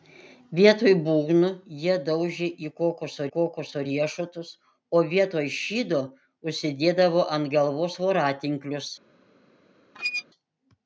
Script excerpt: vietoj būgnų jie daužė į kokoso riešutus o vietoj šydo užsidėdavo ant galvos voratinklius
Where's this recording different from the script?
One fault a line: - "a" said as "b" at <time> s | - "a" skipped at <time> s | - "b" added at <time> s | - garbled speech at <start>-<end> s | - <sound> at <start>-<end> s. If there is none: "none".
- "kokoso" added at 3.3 s
- squeak at 9.9-10.2 s